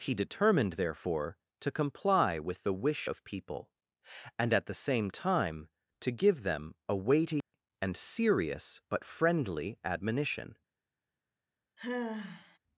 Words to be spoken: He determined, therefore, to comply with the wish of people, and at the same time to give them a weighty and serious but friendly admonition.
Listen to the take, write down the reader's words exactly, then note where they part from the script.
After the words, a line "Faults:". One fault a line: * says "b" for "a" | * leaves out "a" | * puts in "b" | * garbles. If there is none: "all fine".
He determined, therefore, to comply with the wish of people, and at the same time to give them a weighty and serious but friendly admonition.
Faults:
all fine